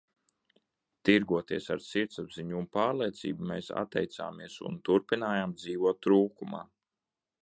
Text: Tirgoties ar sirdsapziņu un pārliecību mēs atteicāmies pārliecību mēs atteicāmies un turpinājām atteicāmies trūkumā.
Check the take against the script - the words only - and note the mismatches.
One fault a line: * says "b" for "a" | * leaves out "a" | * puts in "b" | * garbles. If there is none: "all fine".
* leaves out "pārliecību mēs atteicāmies"
* says "dzīvot" for "atteicāmies"